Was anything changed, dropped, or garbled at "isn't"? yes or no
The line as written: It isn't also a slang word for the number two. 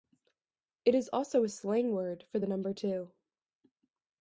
yes